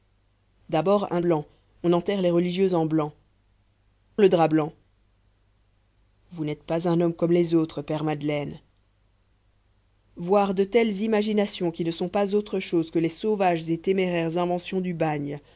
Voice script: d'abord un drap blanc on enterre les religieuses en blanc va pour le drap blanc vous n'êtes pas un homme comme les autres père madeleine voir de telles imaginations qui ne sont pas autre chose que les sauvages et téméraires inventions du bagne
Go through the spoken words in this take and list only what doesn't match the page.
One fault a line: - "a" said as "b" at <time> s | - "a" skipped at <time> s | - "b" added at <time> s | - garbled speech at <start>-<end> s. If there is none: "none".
- "drap" skipped at 1.2 s
- "va pour" skipped at 3.1 s